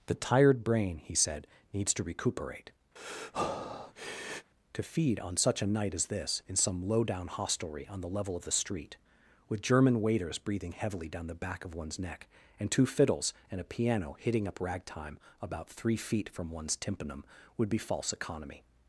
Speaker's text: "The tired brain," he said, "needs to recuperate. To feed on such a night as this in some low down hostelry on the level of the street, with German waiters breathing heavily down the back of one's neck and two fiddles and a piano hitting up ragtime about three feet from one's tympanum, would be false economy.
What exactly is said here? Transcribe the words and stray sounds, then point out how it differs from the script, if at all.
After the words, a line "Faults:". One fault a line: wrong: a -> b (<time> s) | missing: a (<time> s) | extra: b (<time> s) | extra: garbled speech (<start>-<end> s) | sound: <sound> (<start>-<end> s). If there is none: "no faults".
"The tired brain," he said, "needs to recuperate. To feed on such a night as this in some low down hostelry on the level of the street, with German waiters breathing heavily down the back of one's neck and two fiddles and a piano hitting up ragtime about three feet from one's tympanum, would be false economy.
Faults:
sound: breath (3.0-4.5 s)